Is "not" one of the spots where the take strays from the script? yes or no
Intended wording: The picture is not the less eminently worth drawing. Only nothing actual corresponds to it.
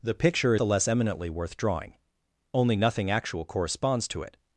yes